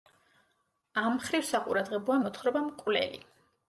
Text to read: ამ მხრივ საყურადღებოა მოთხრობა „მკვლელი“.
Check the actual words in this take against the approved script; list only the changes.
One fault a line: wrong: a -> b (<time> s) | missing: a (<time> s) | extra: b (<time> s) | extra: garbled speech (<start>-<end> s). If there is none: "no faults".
no faults